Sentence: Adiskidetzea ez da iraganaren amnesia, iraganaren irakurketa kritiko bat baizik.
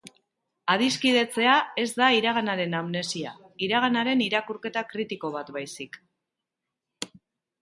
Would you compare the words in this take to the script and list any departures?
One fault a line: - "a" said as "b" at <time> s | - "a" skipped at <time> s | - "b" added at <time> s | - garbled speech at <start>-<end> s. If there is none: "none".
none